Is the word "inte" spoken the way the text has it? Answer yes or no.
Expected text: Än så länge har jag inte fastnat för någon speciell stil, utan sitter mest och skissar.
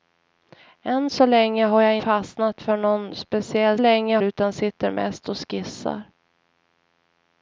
no